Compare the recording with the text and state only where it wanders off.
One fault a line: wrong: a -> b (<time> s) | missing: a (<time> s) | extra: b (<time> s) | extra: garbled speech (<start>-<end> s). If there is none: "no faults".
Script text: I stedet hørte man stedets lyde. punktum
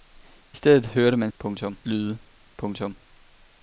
wrong: stedets -> punktum (1.4 s)